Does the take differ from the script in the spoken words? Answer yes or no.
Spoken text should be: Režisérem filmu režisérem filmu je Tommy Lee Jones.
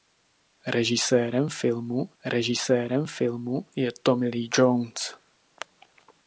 no